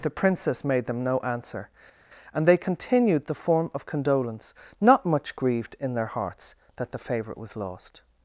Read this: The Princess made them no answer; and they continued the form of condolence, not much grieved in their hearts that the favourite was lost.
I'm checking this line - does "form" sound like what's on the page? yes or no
yes